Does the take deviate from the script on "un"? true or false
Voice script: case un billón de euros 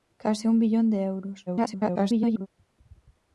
false